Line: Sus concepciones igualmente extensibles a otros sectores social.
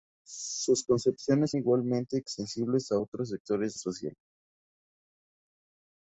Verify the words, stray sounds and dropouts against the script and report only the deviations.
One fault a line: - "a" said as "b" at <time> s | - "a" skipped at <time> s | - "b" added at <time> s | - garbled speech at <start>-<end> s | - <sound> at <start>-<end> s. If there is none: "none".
none